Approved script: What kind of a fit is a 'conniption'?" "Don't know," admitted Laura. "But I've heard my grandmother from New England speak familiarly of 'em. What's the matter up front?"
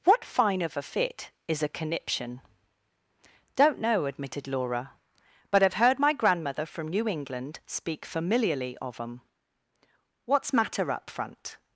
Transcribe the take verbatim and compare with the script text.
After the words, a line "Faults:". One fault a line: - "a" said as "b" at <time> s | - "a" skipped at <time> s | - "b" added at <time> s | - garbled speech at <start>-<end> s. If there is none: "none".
What fine of a fit is a 'conniption'?" "Don't know," admitted Laura. "But I've heard my grandmother from New England speak familiarly of 'em. What's matter up front?"
Faults:
- "kind" said as "fine" at 0.2 s
- "the" skipped at 10.5 s